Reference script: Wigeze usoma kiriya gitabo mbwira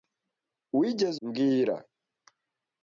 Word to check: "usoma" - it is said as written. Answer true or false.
false